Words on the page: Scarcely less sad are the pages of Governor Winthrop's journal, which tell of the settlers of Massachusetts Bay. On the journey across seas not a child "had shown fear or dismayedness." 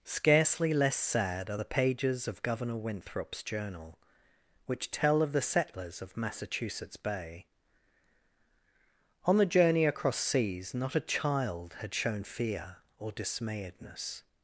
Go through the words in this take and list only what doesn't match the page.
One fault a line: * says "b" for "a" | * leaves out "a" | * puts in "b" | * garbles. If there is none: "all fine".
all fine